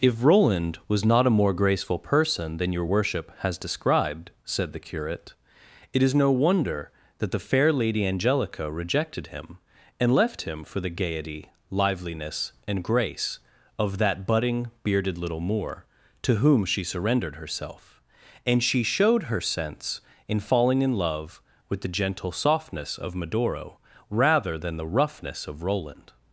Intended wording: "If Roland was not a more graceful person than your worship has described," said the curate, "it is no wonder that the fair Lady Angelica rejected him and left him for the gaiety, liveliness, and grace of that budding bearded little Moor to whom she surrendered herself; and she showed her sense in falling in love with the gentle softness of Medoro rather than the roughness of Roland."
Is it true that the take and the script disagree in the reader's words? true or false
false